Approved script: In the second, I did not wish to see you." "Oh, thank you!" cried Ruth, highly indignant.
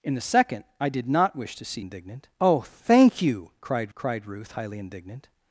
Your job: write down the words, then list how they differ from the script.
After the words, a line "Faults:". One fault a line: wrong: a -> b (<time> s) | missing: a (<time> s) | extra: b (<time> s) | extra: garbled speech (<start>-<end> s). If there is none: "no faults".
In the second, I did not wish to see indignant." "Oh, thank you!" cried cried Ruth, highly indignant.
Faults:
wrong: you -> indignant (1.8 s)
extra: cried (3.9 s)